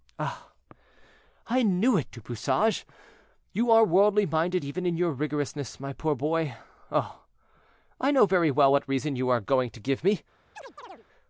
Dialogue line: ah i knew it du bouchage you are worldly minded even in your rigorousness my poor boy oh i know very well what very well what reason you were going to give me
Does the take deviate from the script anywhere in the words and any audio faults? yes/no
yes